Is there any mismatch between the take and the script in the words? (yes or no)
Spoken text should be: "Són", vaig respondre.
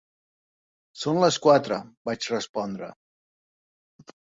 yes